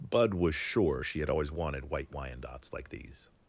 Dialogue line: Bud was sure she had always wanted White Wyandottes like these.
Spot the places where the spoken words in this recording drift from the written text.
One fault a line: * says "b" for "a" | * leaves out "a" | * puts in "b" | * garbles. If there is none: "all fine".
all fine